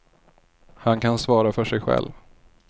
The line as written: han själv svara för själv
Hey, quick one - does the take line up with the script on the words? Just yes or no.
no